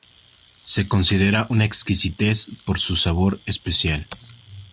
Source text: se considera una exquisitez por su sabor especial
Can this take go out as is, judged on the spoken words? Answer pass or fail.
pass